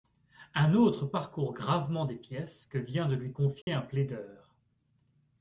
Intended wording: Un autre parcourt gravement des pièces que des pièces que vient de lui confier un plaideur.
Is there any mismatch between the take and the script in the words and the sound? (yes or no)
yes